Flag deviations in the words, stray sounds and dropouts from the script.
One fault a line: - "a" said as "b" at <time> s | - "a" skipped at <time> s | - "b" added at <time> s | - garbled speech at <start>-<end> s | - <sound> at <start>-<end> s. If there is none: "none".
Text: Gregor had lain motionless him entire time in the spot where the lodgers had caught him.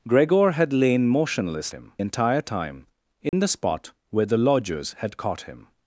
- dropout at 3.3-3.3 s